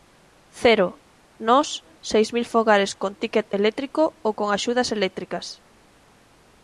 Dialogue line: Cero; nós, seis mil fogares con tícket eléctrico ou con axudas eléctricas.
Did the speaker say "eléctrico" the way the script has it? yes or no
yes